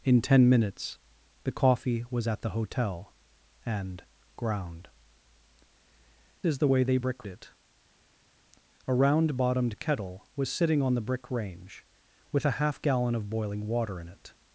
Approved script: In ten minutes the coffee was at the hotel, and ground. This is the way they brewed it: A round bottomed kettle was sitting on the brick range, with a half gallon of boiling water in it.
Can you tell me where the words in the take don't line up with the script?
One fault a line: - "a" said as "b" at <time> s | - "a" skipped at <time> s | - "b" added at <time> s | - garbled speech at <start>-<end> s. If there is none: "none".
- "This" skipped at 4.9 s
- "brewed" said as "brick" at 7.0 s